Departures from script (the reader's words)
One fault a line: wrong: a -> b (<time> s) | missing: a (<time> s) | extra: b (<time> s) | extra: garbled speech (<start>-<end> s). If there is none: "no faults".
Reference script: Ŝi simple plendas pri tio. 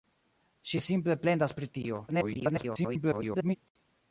extra: garbled speech (2.1-3.6 s)